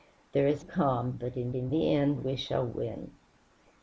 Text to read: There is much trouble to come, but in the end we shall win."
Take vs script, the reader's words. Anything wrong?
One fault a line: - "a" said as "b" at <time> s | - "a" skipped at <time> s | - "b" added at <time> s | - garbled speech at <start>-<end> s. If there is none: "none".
- "much trouble to" skipped at 0.7 s
- "in" added at 1.5 s